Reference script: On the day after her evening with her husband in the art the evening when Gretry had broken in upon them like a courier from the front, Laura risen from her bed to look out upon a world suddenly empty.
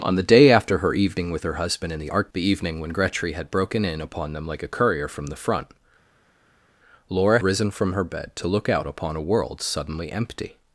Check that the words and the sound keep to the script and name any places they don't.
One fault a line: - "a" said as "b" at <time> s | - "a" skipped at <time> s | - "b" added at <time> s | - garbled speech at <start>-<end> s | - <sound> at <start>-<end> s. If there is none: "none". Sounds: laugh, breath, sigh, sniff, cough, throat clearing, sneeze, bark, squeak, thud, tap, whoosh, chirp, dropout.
none